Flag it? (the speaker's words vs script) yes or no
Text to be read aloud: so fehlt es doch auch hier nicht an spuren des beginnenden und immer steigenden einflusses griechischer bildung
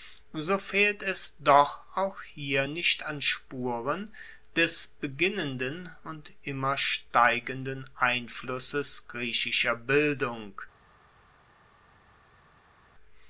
no